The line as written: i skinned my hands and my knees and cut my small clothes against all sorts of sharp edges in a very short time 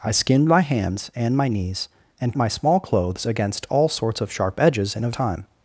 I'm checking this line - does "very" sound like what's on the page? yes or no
no